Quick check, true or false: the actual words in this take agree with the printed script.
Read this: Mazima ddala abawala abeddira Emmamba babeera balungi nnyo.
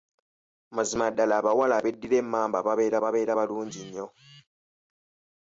false